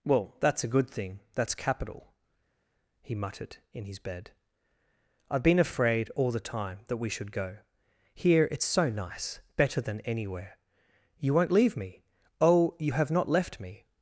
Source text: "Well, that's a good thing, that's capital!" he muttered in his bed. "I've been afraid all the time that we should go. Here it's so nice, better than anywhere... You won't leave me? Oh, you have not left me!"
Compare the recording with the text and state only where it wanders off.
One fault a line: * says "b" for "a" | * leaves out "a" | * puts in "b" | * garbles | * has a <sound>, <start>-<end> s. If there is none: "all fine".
all fine